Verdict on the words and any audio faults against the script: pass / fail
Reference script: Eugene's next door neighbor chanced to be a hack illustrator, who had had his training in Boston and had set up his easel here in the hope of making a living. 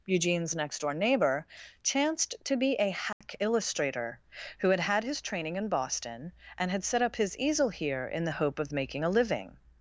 fail